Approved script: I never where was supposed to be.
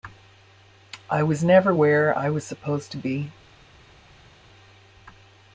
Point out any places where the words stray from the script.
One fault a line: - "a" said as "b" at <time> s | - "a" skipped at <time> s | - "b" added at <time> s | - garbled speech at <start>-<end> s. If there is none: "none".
- "was" added at 1.2 s
- "I" added at 2.2 s